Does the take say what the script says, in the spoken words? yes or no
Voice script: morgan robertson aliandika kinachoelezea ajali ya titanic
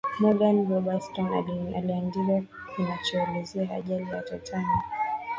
yes